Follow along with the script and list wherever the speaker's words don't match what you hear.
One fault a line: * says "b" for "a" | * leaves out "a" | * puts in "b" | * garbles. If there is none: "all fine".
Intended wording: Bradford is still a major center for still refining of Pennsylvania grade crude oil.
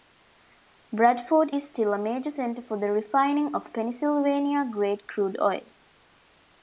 * says "the" for "still"